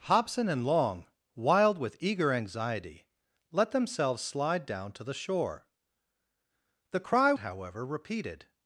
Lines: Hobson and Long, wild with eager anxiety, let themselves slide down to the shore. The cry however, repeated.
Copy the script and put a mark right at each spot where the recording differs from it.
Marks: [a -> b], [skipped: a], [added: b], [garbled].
Hobson and Long, wild with eager anxiety, let themselves slide down to the shore. The cry however, repeated.